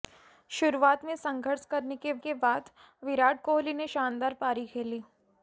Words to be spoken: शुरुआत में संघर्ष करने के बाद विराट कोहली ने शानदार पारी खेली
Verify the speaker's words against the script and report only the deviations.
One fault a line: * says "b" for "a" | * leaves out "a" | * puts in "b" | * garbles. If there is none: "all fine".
* puts in "के"